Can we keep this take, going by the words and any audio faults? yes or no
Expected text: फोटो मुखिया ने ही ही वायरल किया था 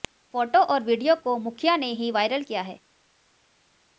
no